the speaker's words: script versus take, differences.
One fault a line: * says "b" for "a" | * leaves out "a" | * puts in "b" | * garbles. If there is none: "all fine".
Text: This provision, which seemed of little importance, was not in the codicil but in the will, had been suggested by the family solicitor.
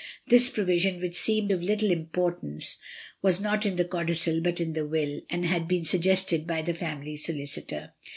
* puts in "and"